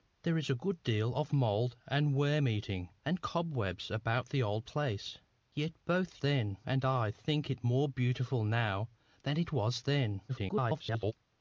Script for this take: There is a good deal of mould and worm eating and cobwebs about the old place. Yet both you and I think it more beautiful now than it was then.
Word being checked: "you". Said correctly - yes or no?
no